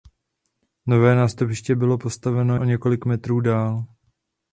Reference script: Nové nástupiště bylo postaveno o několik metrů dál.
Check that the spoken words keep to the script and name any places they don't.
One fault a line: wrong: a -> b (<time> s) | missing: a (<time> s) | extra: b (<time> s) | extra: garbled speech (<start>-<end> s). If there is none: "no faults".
no faults